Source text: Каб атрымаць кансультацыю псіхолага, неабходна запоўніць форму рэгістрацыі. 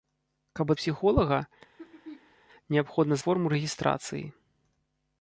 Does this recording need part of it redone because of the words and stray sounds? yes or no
yes